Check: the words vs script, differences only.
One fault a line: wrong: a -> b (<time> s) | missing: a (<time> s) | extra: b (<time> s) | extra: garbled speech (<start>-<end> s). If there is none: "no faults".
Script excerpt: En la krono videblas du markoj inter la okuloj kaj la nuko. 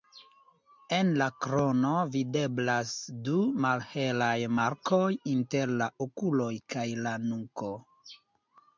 extra: malhelaj (3.6 s)